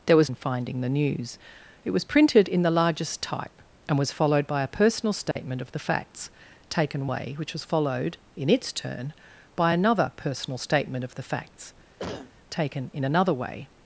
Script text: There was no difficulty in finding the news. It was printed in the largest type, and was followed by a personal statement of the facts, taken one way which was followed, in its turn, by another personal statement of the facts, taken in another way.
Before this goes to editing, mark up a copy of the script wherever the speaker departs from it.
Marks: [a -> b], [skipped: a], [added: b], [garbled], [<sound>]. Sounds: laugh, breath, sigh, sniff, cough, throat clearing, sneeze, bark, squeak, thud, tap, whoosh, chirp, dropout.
There was [skipped: no difficulty] in finding the news. It was printed in the largest type, and was followed by a personal statement [dropout] of the facts, taken [skipped: one] way which was followed, in its turn, by another personal statement of the facts, [cough] taken in another way.